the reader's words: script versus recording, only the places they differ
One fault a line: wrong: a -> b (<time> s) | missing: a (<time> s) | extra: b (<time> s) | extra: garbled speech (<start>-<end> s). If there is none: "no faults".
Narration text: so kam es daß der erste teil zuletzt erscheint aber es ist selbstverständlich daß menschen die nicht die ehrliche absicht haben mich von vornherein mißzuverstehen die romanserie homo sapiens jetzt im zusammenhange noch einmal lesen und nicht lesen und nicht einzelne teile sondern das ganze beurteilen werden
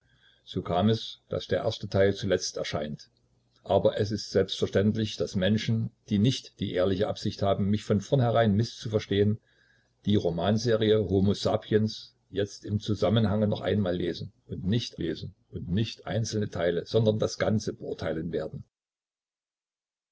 no faults